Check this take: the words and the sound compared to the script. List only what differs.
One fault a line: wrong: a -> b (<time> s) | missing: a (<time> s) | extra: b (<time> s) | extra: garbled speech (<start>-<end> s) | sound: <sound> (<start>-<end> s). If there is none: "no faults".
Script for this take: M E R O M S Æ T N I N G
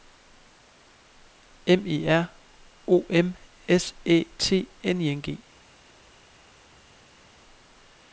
no faults